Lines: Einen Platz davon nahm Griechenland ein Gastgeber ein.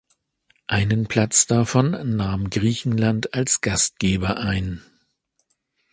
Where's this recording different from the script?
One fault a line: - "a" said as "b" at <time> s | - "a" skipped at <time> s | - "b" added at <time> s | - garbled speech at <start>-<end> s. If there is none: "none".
- "ein" said as "als" at 3.4 s